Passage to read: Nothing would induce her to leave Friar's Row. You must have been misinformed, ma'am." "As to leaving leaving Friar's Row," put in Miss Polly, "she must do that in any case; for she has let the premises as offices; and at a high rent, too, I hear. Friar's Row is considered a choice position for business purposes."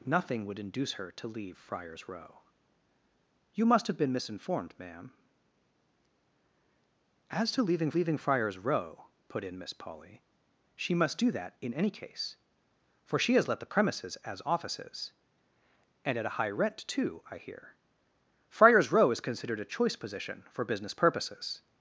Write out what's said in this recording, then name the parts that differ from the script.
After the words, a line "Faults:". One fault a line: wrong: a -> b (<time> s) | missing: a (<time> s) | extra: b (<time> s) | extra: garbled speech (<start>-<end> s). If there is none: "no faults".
Nothing would induce her to leave Friar's Row. You must have been misinformed, ma'am." "As to leaving leaving Friar's Row," put in Miss Polly, "she must do that in any case; for she has let the premises as offices; and at a high rent, too, I hear. Friar's Row is considered a choice position for business purposes."
Faults:
no faults